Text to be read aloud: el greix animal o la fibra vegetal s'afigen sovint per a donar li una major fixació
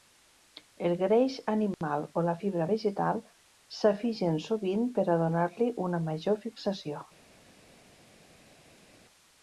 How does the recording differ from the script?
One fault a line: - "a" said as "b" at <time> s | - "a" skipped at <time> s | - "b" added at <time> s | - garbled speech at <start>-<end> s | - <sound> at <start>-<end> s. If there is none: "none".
none